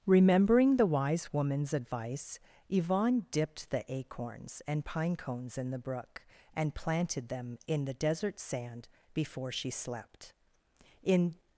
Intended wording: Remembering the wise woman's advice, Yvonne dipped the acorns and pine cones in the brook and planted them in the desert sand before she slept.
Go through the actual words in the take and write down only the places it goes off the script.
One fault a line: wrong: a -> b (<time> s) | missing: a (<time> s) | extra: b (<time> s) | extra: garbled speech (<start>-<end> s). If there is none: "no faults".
extra: In (11.0 s)